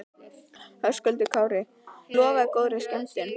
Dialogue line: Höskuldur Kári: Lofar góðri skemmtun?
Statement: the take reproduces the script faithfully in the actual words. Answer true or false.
true